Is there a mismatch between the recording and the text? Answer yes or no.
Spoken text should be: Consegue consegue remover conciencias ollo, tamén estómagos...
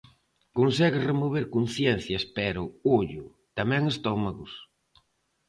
yes